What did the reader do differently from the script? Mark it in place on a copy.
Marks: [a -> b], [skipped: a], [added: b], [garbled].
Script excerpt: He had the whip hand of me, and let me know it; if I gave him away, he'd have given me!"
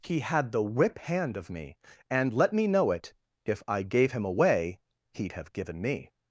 He had the whip hand of me, and let me know it; if I gave him away, he'd have given me!"